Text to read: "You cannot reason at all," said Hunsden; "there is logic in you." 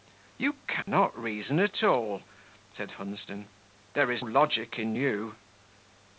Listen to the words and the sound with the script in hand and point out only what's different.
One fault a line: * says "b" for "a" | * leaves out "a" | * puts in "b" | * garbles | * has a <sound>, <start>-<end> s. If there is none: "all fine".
* has a dropout, 0.8-0.9 s